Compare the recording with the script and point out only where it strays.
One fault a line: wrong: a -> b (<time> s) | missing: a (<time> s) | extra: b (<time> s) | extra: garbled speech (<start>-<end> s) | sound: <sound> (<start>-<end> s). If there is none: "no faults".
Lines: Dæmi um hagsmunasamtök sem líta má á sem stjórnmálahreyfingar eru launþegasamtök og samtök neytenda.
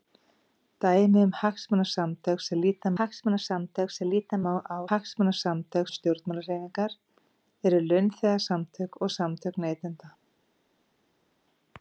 extra: hagsmunasamtök sem líta (3.0 s)
wrong: sem -> hagsmunasamtök (4.9 s)